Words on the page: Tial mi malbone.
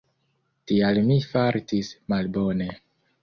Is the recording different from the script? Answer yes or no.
yes